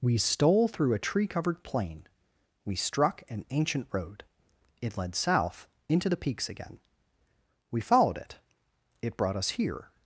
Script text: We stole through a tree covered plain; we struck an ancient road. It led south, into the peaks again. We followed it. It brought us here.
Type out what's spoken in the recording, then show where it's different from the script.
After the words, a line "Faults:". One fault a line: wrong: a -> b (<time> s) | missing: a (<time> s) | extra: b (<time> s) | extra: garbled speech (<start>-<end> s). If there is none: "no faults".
We stole through a tree covered plain; we struck an ancient road. It led south, into the peaks again. We followed it. It brought us here.
Faults:
no faults